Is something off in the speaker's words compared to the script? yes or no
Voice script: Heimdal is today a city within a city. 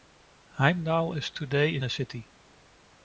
yes